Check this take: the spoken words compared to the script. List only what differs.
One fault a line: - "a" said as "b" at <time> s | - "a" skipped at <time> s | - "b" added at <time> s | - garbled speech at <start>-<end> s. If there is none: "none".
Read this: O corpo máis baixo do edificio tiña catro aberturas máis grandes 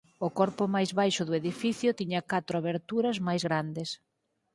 none